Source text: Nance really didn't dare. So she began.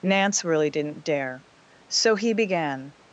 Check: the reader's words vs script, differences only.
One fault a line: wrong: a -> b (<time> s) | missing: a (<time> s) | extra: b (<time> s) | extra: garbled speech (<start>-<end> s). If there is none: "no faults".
wrong: she -> he (2.1 s)